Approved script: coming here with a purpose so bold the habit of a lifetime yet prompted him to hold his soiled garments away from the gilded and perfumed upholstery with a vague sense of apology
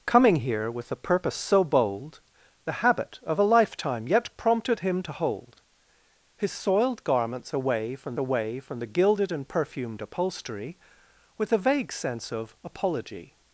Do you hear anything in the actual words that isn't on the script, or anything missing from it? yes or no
yes